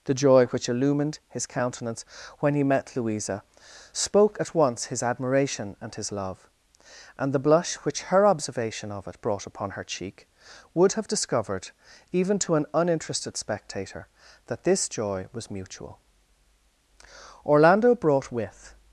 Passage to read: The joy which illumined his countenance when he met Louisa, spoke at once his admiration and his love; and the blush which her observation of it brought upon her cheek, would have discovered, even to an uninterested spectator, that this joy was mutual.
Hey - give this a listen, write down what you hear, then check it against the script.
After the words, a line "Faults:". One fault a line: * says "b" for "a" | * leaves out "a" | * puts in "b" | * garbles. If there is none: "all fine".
The joy which illumined his countenance when he met Louisa, spoke at once his admiration and his love; and the blush which her observation of it brought upon her cheek, would have discovered, even to an uninterested spectator, that this joy was mutual. 'Orlando brought with
Faults:
* puts in "Orlando brought with"